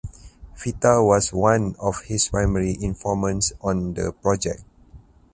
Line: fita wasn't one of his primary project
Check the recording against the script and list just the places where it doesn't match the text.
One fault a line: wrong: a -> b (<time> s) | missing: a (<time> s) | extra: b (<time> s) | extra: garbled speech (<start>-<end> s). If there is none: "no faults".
wrong: wasn't -> was (1.1 s)
extra: informants on the (2.8 s)